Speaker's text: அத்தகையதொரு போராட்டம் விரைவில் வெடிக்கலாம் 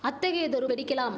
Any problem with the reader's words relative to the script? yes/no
yes